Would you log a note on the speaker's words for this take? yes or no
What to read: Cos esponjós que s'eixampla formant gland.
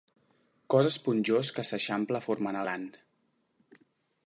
no